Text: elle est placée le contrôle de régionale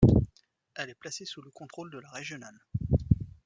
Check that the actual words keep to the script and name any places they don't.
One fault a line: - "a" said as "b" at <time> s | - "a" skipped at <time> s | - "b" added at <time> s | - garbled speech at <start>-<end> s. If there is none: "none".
- "sous" added at 1.2 s
- "la" added at 2.0 s